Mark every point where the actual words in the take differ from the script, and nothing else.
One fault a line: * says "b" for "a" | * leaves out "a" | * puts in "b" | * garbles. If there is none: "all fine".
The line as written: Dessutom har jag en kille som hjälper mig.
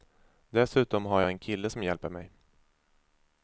all fine